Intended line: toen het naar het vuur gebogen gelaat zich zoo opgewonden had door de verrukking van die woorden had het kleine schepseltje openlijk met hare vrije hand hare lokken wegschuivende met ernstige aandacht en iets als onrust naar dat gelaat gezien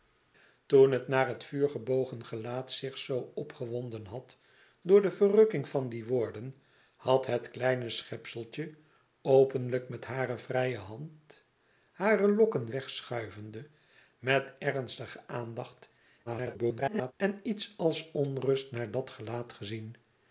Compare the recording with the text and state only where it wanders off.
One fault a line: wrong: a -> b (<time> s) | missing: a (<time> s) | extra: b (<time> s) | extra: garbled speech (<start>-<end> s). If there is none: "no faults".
extra: garbled speech (16.3-17.1 s)